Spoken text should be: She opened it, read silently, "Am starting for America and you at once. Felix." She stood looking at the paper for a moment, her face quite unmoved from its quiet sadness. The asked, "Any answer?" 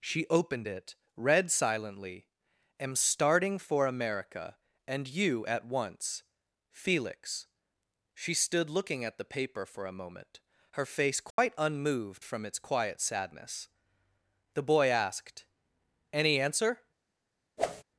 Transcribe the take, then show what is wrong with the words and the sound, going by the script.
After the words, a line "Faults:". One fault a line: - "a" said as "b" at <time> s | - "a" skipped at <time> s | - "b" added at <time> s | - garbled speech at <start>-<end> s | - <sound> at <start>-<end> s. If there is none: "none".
She opened it, read silently, "Am starting for America and you at once. Felix." She stood looking at the paper for a moment, her face quite unmoved from its quiet sadness. The boy asked, "Any answer?"
Faults:
- dropout at 11.3-11.4 s
- "boy" added at 14.6 s
- whoosh at 17.6-17.8 s